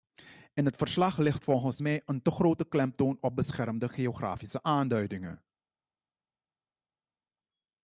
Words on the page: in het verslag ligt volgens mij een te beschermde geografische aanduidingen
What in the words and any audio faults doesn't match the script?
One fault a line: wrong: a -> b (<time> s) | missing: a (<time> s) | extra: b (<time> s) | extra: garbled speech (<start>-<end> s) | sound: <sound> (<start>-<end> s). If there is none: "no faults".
extra: grote klemtoon op (2.3 s)